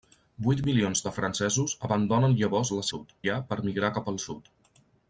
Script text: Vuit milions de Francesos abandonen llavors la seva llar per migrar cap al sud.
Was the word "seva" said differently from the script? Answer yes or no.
yes